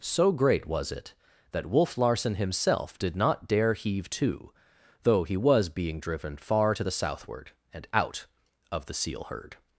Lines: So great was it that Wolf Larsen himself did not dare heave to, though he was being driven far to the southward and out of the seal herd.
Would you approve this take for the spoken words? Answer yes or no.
yes